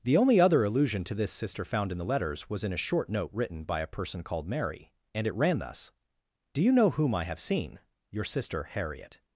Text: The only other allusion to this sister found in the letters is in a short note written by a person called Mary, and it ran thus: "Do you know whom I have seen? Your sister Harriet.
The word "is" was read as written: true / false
false